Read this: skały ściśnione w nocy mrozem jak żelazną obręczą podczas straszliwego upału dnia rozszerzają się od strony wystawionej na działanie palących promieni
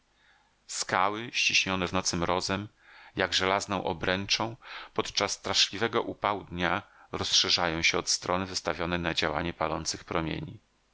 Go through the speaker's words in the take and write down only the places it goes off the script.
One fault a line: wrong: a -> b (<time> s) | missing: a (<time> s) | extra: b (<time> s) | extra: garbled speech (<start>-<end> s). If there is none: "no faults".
no faults